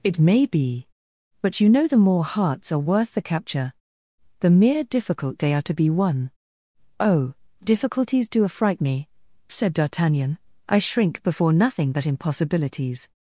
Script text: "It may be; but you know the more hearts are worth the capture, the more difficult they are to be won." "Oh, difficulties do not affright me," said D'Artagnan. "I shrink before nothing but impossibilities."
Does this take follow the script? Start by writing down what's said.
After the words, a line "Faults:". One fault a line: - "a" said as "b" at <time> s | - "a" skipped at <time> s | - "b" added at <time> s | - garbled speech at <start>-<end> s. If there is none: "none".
"It may be; but you know the more hearts are worth the capture, the mere difficult they are to be won." "Oh, difficulties do affright me," said D'Artagnan. "I shrink before nothing but impossibilities."
Faults:
- "more" said as "mere" at 4.5 s
- "not" skipped at 8.4 s